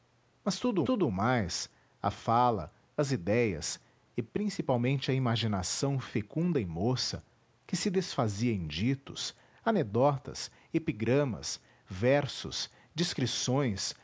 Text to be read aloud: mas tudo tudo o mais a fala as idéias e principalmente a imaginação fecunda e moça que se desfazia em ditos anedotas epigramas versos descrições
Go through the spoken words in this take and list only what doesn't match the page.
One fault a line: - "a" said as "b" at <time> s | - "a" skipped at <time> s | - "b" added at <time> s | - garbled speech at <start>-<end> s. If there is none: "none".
none